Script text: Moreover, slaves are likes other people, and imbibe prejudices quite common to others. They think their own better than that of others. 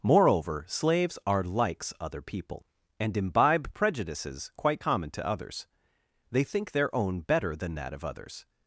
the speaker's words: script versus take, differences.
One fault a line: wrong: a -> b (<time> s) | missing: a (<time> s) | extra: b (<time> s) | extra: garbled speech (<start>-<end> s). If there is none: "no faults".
no faults